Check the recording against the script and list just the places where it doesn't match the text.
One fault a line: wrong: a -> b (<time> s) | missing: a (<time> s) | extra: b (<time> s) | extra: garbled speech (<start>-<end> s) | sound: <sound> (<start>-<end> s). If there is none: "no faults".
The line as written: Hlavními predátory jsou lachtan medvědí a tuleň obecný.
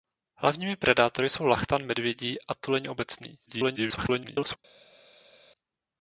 extra: garbled speech (3.5-4.6 s)